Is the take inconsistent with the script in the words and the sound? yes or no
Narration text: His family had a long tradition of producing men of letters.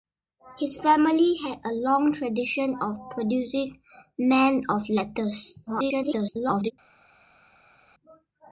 yes